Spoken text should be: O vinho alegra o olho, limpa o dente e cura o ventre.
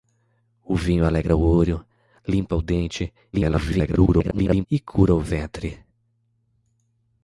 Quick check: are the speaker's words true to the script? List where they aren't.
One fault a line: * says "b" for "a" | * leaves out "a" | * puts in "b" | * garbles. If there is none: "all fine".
* garbles